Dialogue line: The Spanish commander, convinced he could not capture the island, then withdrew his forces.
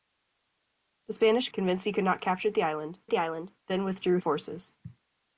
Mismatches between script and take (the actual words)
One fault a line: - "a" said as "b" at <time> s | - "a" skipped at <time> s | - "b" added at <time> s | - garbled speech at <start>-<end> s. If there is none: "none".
- "commander" skipped at 1.5 s
- "the island" added at 3.1 s
- "his" skipped at 4.2 s